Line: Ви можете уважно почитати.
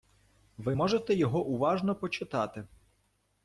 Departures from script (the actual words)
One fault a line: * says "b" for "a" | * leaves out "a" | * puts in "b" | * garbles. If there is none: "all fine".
* puts in "його"